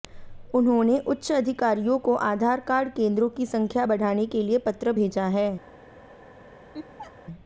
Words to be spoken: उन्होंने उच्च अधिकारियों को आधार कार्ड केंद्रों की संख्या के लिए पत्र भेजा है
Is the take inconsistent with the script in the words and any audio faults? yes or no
yes